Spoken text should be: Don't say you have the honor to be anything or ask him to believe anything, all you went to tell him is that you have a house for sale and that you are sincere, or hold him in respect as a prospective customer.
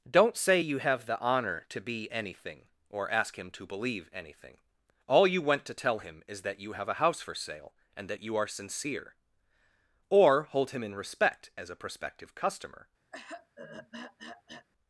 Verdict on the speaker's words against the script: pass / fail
pass